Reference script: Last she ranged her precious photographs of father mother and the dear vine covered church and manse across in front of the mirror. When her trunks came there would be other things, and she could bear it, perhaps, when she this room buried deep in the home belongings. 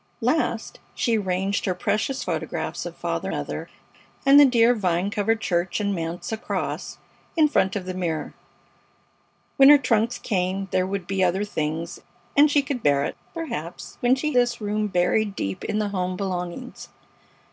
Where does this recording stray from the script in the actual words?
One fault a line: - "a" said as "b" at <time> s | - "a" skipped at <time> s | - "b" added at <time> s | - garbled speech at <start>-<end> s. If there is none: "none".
none